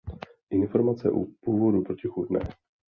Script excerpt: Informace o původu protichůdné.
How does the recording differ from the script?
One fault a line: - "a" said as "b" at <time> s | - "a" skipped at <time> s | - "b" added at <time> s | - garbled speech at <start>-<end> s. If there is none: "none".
none